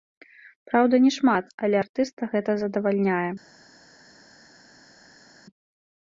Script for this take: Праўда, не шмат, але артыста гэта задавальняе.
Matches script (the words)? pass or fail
pass